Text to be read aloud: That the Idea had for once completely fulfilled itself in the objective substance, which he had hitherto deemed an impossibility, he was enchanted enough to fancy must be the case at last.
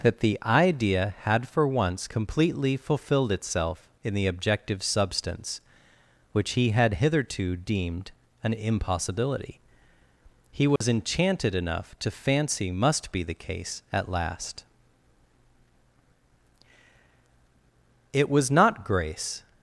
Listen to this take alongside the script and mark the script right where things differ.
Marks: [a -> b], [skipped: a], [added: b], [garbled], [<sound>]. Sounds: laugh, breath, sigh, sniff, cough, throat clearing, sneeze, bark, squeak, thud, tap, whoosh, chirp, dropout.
That the Idea had for once completely fulfilled itself in the objective substance, which he had hitherto deemed an impossibility, he was [dropout] enchanted enough to fancy must be the case at last. [added: It was not Grace]